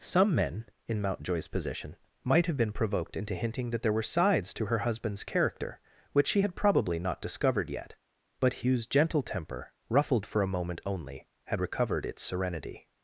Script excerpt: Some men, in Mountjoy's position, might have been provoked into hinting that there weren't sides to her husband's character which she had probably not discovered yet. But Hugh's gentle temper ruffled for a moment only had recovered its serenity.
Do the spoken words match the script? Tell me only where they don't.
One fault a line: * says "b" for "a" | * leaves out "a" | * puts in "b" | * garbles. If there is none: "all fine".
* says "were" for "weren't"